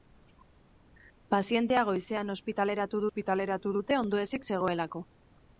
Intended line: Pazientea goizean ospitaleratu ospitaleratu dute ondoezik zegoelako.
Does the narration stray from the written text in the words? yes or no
no